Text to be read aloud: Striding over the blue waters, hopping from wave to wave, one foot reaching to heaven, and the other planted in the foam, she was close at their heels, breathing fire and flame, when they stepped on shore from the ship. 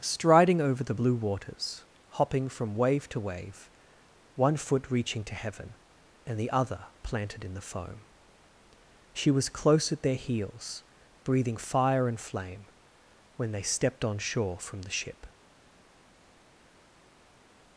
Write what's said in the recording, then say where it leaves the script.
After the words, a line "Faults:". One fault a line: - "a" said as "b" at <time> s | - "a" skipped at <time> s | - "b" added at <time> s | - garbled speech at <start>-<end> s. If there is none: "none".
Striding over the blue waters, hopping from wave to wave, one foot reaching to heaven, and the other planted in the foam, she was close at their heels, breathing fire and flame, when they stepped on shore from the ship.
Faults:
none